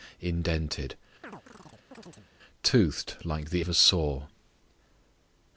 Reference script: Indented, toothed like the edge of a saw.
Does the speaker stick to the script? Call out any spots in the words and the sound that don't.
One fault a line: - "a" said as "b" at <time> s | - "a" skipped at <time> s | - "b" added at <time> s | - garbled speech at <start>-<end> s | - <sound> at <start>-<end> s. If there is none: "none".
- chirp at 1.2-2.3 s
- "edge" skipped at 3.6 s